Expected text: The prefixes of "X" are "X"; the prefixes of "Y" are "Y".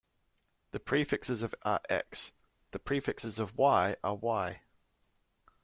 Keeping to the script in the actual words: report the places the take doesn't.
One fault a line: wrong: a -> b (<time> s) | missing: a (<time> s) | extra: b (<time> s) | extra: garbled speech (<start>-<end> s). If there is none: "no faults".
missing: X (1.5 s)